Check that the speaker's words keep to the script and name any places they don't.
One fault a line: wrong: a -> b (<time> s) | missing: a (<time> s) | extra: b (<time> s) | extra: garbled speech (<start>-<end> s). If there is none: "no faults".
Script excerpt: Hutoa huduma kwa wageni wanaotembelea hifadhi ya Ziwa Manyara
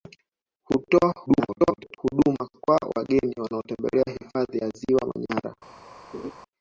extra: garbled speech (1.3-2.0 s)